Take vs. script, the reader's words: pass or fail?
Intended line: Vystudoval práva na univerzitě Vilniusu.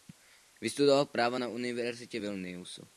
pass